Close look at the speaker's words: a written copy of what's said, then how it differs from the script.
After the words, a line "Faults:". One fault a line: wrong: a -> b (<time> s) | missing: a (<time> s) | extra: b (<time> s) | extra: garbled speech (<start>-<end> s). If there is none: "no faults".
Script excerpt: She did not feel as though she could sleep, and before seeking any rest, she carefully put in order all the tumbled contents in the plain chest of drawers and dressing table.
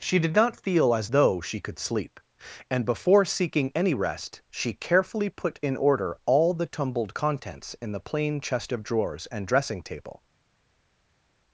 She did not feel as though she could sleep, and before seeking any rest, she carefully put in order all the tumbled contents in the plain chest of drawers and dressing table.
Faults:
no faults